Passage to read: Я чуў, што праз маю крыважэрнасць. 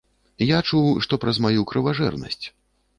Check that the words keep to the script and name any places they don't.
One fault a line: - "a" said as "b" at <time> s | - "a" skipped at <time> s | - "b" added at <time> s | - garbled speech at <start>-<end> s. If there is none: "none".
none